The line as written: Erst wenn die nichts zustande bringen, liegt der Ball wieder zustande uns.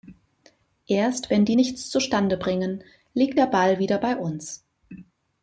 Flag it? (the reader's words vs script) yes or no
yes